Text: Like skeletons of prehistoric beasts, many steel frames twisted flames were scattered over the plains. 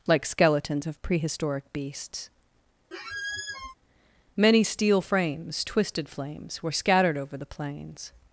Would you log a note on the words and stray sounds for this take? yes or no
yes